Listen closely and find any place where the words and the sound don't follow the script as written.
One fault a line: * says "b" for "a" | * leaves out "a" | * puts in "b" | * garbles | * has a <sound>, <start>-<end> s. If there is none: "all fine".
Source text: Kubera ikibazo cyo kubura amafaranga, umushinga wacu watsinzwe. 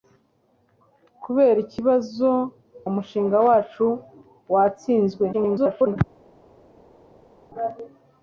* leaves out "cyo kubura amafaranga"
* garbles